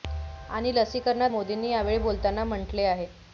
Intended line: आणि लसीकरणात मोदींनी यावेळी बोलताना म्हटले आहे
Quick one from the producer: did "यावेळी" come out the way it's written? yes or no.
yes